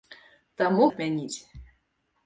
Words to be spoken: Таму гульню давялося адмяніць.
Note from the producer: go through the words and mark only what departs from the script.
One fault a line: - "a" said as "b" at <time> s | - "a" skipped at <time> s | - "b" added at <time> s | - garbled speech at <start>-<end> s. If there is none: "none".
- "гульню давялося" skipped at 0.8 s